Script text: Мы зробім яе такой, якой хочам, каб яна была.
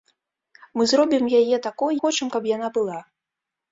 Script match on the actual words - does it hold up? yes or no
no